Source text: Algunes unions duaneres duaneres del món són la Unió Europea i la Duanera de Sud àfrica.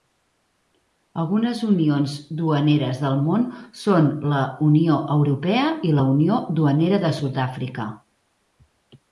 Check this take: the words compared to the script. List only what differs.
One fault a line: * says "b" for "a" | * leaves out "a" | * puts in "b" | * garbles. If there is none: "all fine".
* leaves out "duaneres"
* puts in "Unió"